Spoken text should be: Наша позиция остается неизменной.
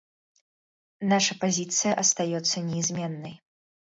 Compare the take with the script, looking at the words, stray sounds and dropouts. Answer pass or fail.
pass